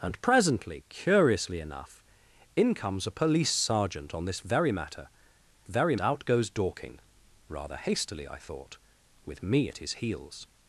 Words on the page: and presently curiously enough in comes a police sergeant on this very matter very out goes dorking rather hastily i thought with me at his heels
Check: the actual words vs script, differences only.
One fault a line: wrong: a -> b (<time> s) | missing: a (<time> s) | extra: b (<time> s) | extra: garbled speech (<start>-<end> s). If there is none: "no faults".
no faults